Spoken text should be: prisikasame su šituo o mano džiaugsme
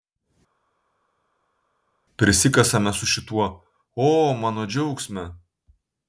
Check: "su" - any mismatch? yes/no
no